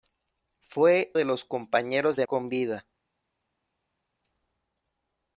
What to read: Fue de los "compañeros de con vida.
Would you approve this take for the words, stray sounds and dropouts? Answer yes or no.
yes